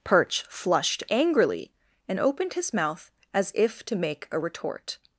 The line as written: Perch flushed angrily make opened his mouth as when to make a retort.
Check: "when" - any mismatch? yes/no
yes